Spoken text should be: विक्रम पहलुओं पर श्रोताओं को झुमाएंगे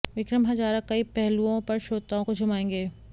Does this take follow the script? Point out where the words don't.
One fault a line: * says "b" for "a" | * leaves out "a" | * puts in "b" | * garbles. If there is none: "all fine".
* puts in "हजारा कई"